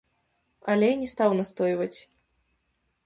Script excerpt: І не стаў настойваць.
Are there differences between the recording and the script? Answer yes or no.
yes